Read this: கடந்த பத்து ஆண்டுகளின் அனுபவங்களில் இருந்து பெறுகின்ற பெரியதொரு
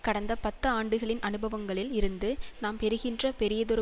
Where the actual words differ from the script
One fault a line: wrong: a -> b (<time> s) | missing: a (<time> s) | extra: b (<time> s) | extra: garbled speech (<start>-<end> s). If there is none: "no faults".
extra: நாம் (2.6 s)